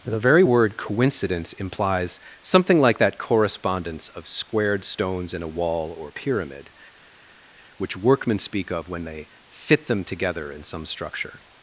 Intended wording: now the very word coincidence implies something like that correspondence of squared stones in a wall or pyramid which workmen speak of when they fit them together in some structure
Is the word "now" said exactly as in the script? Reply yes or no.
no